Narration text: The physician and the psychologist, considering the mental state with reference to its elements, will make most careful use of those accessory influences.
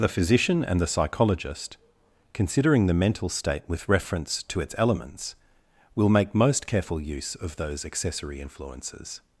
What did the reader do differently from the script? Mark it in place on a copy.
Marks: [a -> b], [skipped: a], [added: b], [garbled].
The physician and the psychologist, considering the mental state with reference to its elements, will make most careful use of those accessory influences.